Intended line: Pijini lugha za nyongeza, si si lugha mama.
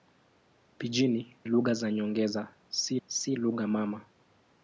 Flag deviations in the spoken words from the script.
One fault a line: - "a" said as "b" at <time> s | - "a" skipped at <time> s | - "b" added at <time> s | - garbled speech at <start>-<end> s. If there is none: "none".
none